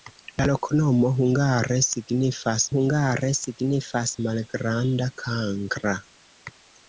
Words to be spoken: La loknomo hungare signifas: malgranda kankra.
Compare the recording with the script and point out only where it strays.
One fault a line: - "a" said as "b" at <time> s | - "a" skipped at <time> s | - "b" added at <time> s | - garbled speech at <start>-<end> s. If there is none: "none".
- "hungare signifas" added at 2.7 s